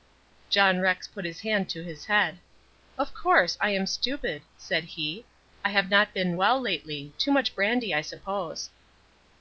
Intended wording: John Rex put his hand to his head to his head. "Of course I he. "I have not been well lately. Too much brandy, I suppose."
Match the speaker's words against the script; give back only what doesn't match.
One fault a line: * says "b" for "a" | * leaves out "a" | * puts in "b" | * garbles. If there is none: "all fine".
* says "Of course I am stupid said" for "to his head Of course I"